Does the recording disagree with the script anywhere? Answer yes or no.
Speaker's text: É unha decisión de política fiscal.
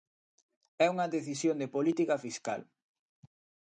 no